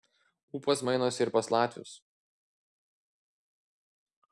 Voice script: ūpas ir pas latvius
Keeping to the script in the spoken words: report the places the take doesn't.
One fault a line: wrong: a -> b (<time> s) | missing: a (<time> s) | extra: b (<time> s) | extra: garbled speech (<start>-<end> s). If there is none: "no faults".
extra: mainosi (0.9 s)